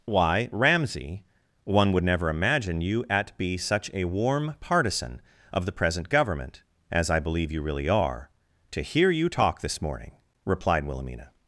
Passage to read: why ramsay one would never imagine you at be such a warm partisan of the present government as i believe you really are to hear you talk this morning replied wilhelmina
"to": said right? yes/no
yes